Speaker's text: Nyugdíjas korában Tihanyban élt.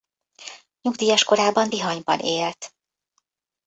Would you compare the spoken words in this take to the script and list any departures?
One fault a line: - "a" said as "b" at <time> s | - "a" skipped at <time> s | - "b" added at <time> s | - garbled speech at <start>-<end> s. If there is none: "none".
none